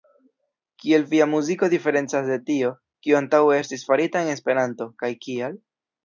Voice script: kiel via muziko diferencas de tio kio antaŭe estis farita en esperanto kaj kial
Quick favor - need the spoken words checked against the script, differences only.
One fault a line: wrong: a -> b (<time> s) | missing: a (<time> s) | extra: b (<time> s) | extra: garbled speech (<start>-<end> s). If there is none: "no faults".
no faults